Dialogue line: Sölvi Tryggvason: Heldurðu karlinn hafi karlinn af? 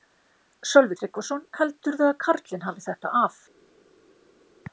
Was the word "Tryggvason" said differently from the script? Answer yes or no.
no